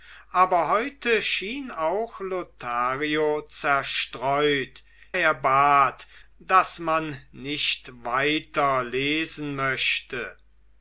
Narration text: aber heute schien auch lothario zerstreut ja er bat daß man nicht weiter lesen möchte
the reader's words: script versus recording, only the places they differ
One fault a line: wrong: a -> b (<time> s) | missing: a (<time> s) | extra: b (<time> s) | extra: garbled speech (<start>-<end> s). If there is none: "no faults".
missing: ja (4.8 s)